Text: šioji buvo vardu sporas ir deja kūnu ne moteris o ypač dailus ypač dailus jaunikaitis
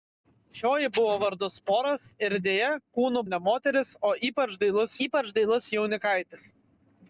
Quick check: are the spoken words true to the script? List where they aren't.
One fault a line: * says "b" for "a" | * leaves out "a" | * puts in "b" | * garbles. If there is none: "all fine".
all fine